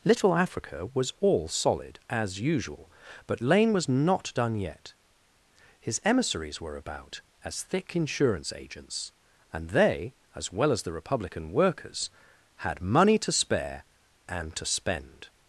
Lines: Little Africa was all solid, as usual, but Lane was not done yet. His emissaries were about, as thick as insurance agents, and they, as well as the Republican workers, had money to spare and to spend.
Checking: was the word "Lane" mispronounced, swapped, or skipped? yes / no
no